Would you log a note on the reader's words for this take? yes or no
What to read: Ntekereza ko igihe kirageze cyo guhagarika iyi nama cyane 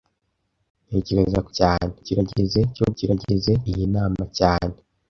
yes